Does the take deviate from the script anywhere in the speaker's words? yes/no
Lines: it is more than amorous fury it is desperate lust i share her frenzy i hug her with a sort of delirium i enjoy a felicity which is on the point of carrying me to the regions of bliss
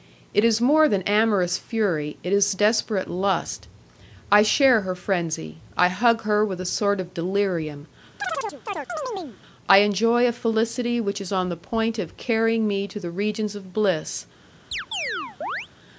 no